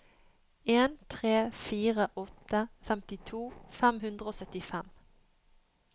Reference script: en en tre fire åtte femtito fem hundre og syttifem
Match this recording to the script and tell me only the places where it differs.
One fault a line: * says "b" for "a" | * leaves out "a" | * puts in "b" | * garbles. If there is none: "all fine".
* leaves out "en"